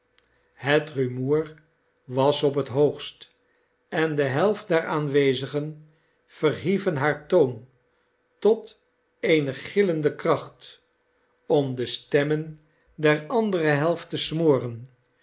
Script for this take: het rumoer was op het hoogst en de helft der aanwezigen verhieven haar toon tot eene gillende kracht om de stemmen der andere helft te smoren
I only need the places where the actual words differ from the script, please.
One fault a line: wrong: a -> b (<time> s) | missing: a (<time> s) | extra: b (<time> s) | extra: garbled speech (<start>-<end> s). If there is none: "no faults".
no faults